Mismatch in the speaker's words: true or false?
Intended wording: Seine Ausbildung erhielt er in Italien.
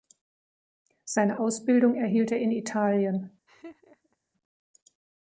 false